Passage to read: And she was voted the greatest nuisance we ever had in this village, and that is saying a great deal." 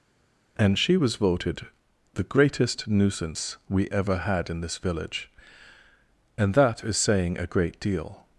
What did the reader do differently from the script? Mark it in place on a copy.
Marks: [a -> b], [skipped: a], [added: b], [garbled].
And she was voted the greatest nuisance we ever had in this village, and that is saying a great deal."